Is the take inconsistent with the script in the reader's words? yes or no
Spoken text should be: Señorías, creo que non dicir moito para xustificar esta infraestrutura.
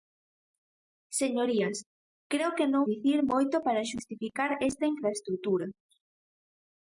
no